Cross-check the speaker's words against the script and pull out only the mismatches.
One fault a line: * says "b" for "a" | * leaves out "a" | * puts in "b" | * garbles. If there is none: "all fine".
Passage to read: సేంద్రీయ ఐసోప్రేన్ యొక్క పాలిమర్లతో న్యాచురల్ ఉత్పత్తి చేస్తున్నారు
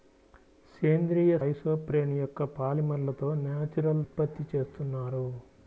all fine